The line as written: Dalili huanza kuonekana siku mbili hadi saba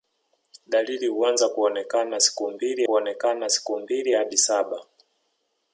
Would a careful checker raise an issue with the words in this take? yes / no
yes